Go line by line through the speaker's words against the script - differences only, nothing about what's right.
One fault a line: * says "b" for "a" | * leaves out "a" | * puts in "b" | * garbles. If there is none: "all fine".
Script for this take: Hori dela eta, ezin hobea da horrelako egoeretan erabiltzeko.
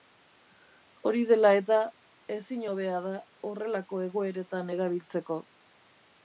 all fine